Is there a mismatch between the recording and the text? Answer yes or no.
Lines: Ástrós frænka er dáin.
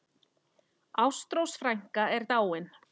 no